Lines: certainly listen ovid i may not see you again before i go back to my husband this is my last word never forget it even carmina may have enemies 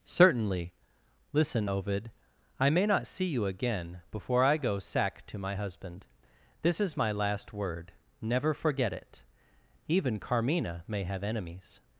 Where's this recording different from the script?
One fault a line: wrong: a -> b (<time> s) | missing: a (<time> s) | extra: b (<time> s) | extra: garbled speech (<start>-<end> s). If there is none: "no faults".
wrong: back -> sack (4.8 s)